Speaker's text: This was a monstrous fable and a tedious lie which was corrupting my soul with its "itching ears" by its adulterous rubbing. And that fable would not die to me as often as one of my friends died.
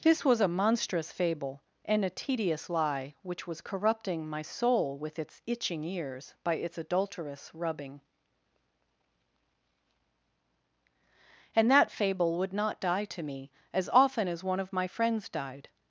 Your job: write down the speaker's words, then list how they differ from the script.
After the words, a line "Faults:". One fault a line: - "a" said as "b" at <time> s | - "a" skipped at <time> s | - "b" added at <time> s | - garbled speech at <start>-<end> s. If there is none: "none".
This was a monstrous fable and a tedious lie which was corrupting my soul with its "itching ears" by its adulterous rubbing. And that fable would not die to me as often as one of my friends died.
Faults:
none